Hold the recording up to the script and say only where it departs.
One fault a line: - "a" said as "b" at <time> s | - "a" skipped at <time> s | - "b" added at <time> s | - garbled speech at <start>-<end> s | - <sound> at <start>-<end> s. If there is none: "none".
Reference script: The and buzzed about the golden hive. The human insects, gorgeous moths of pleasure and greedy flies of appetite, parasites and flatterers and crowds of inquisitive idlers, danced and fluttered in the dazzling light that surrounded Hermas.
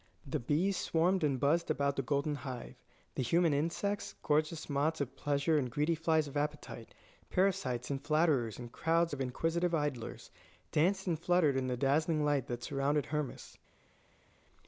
- "bees swarmed" added at 0.4 s